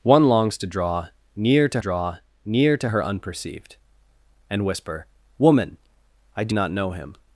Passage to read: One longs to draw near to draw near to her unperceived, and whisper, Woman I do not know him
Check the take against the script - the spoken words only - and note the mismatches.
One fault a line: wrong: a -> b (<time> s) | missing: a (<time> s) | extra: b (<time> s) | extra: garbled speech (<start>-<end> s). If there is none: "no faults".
no faults